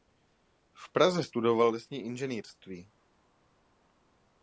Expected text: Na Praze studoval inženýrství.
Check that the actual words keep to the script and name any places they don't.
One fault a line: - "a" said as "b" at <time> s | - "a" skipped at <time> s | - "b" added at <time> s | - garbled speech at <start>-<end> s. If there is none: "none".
- "Na" said as "V" at 0.7 s
- "lesní" added at 1.7 s